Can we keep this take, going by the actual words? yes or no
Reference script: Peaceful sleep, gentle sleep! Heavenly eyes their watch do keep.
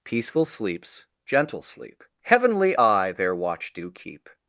no